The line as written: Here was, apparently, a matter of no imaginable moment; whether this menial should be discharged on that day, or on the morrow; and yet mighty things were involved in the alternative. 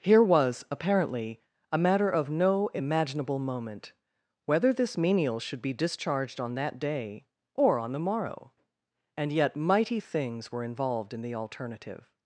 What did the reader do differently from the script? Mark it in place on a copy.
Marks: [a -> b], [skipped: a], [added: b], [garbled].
Here was, apparently, a matter of no imaginable moment; whether this menial should be discharged on that day, or on the morrow; and yet mighty things were involved in the alternative.